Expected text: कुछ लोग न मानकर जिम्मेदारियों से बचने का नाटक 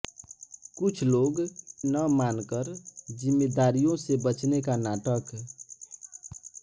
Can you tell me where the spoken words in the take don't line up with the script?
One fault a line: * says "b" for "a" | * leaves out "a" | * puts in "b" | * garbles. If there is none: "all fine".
all fine